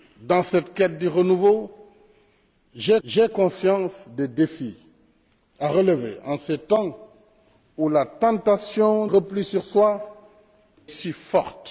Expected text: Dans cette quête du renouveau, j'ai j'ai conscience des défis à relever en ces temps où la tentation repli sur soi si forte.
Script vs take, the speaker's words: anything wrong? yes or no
no